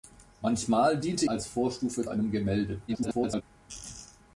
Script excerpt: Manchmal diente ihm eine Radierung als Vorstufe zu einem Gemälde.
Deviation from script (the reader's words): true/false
true